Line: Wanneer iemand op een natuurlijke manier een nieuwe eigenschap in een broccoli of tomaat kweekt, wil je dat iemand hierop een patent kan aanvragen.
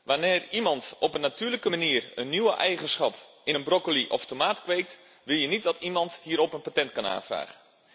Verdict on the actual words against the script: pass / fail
fail